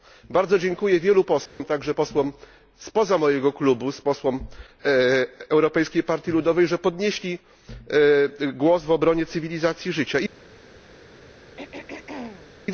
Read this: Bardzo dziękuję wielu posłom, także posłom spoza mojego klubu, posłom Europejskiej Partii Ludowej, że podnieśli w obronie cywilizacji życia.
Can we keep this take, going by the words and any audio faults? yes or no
no